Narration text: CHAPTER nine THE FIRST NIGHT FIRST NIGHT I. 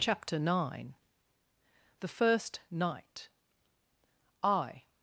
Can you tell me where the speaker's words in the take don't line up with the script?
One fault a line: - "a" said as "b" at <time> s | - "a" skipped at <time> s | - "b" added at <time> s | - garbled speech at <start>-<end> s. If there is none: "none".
- "FIRST NIGHT" skipped at 3.3 s